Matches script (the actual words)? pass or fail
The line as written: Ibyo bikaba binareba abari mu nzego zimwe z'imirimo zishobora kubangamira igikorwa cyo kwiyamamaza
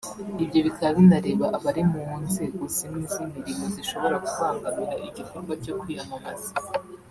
pass